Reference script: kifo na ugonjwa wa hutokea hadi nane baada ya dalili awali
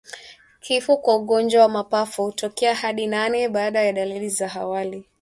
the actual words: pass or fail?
fail